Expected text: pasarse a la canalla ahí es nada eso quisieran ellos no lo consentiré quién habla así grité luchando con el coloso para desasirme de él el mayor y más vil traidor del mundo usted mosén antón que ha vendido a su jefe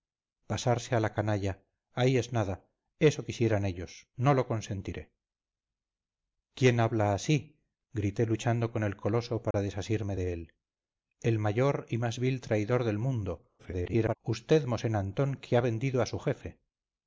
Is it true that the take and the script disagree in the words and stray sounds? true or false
true